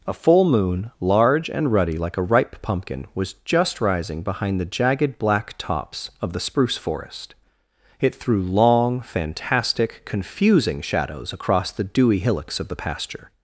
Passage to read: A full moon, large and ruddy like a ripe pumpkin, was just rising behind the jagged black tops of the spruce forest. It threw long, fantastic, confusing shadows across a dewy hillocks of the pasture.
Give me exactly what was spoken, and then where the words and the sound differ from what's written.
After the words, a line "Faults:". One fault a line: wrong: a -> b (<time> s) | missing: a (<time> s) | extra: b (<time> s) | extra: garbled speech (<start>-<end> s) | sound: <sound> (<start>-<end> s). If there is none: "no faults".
A full moon, large and ruddy like a ripe pumpkin, was just rising behind the jagged black tops of the spruce forest. It threw long, fantastic, confusing shadows across the dewy hillocks of the pasture.
Faults:
wrong: a -> the (11.7 s)